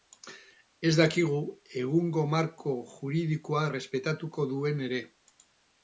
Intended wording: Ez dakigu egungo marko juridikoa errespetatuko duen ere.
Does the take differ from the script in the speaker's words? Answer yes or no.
no